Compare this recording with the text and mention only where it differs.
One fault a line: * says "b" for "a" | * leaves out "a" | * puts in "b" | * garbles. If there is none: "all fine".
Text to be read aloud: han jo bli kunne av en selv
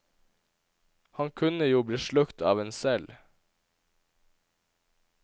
* puts in "kunne"
* says "slukt" for "kunne"